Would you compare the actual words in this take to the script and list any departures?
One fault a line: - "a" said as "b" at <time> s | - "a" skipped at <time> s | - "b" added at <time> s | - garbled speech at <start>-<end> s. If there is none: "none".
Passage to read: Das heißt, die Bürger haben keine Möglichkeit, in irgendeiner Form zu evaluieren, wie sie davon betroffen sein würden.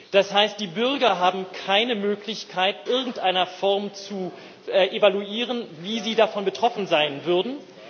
- "in" skipped at 2.8 s